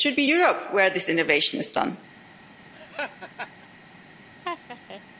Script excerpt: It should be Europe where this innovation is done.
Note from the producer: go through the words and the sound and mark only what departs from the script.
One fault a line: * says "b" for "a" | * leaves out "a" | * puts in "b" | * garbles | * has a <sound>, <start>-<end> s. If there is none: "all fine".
* has a laugh, 2.7-3.7 s
* has a laugh, 4.4-5.0 s